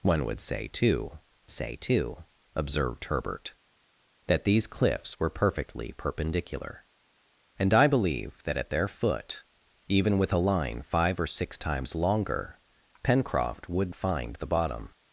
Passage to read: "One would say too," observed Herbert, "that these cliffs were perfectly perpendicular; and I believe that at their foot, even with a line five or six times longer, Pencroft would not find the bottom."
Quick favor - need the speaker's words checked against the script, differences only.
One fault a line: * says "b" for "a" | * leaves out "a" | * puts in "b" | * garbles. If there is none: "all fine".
* puts in "say too"
* leaves out "not"